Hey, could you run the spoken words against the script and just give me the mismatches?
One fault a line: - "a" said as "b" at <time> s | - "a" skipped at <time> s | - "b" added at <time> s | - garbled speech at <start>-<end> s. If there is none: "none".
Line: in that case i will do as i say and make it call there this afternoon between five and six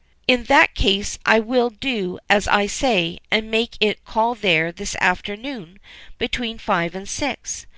none